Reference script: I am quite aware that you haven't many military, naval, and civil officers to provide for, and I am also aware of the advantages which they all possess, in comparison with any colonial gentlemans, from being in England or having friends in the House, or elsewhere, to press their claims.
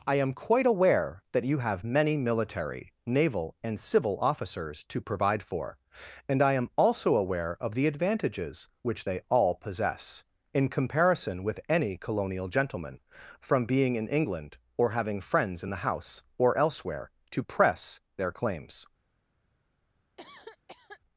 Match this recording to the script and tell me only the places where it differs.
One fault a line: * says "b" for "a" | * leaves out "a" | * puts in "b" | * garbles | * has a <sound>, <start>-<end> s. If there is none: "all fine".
* says "have" for "haven't"
* says "gentleman" for "gentlemans"
* has a cough, 20.2-21.0 s